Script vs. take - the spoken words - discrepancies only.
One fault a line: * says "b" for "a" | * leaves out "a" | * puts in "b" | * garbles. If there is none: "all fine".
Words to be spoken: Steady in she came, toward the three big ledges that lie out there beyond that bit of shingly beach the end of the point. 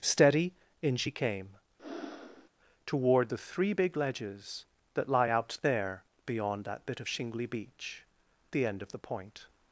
all fine